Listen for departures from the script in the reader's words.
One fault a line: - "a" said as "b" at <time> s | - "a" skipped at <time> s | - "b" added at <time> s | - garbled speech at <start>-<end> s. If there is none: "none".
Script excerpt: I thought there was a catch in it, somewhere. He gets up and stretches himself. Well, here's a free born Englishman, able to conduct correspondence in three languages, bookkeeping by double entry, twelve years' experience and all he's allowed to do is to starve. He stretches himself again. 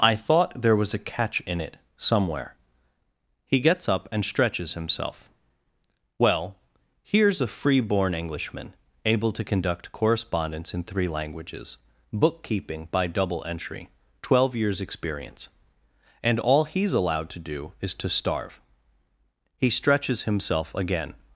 none